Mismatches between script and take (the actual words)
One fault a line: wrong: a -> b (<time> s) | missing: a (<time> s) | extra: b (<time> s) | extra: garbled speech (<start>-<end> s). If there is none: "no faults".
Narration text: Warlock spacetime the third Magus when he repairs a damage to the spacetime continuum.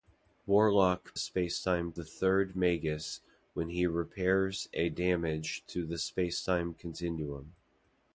no faults